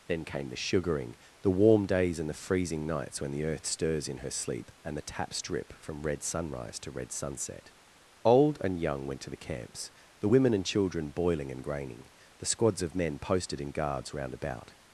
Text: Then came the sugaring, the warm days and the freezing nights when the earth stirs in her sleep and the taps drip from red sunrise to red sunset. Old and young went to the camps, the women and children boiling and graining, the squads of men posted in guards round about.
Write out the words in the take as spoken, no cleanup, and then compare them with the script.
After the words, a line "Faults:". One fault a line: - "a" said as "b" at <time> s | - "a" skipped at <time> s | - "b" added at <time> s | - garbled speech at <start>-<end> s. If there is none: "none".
Then came the sugaring, the warm days and the freezing nights when the earth stirs in her sleep and the taps drip from red sunrise to red sunset. Old and young went to the camps, the women and children boiling and graining, the squads of men posted in guards round about.
Faults:
none